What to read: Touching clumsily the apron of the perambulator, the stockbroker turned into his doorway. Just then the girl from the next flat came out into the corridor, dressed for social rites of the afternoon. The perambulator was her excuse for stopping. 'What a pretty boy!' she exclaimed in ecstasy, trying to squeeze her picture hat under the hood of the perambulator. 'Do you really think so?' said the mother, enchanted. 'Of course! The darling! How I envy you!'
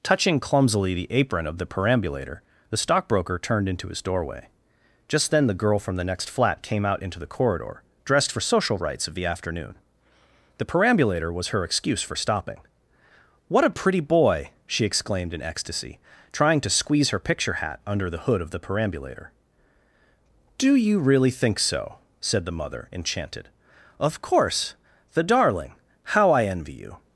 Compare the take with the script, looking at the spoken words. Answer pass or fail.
pass